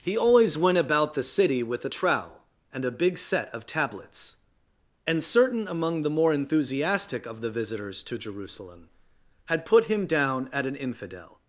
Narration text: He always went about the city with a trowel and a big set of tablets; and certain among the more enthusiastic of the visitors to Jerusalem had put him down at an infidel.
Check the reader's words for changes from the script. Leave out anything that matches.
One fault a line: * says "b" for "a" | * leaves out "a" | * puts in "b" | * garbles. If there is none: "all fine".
all fine